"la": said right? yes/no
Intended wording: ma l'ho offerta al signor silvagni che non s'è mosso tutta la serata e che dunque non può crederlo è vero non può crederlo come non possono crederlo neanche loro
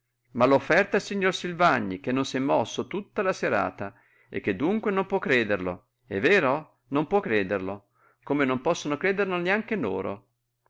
yes